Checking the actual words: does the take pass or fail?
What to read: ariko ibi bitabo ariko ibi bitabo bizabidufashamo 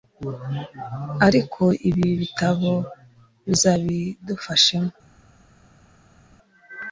fail